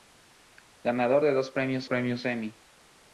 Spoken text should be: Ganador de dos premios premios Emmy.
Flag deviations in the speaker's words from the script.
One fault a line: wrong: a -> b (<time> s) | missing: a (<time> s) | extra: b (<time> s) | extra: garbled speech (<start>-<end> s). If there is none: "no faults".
no faults